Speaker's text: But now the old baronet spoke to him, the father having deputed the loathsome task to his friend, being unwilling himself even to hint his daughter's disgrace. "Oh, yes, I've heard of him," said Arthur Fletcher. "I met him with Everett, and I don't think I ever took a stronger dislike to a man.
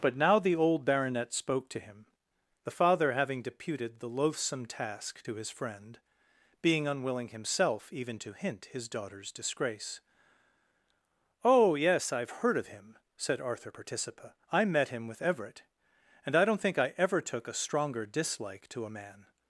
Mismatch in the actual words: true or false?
true